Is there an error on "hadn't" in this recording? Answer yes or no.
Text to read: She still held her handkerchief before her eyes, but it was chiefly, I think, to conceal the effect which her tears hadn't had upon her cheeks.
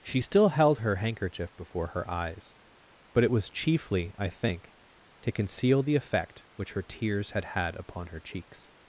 yes